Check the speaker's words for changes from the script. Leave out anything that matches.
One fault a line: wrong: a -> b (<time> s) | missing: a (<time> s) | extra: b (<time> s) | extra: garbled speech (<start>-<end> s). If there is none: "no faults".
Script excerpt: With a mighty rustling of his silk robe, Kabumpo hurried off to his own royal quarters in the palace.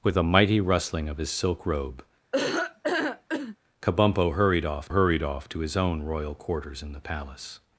extra: hurried off (4.9 s)